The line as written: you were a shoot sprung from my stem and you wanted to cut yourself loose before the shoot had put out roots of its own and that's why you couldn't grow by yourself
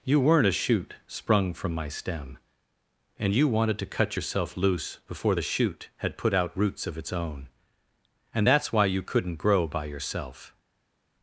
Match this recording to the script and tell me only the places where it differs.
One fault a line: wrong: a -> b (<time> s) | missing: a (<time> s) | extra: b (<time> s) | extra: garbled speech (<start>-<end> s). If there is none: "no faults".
wrong: were -> weren't (0.2 s)